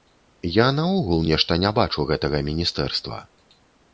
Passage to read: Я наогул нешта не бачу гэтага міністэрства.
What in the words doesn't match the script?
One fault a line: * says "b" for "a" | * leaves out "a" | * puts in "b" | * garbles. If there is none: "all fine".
all fine